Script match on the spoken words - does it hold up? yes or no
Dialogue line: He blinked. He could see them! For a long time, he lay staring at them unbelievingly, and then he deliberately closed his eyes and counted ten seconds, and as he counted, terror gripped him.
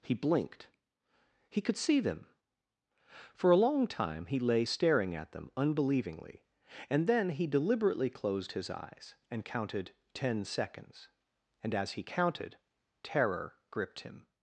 yes